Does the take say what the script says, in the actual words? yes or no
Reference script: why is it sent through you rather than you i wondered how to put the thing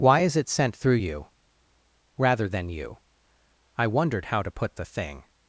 yes